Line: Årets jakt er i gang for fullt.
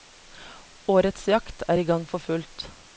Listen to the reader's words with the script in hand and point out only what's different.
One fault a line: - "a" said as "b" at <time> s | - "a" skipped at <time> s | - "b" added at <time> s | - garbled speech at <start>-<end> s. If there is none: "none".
none